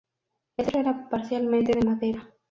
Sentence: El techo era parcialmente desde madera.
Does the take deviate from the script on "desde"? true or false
true